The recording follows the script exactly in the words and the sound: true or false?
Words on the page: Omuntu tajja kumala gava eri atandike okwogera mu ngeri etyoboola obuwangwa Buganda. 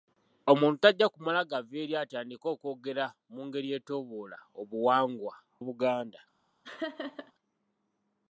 false